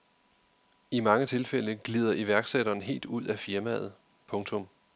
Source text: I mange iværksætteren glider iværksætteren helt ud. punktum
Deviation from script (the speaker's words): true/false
true